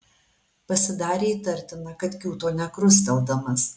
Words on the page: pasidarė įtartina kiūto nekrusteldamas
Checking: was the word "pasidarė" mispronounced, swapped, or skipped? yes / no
no